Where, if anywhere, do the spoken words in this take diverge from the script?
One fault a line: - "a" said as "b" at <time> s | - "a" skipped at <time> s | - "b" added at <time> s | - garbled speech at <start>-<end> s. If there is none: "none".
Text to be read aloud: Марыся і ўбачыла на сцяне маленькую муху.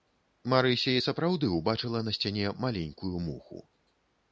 - "сапраўды" added at 1.1 s